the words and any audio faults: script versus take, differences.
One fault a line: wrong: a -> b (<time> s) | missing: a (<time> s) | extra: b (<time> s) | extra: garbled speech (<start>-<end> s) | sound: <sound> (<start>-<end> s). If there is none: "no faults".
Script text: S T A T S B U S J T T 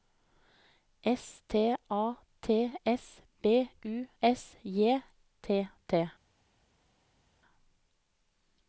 no faults